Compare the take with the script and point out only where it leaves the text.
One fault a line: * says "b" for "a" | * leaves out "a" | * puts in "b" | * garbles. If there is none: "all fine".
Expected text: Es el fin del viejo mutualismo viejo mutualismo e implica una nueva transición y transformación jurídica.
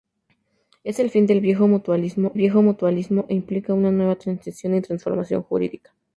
all fine